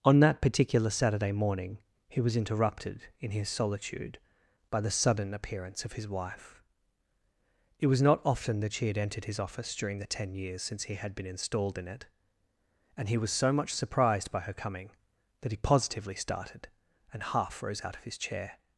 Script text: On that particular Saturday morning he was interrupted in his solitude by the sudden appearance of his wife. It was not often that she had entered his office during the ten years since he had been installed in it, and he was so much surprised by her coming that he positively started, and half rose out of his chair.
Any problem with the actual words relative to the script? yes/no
no